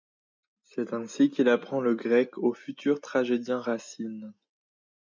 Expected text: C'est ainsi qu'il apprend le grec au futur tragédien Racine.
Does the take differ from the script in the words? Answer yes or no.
no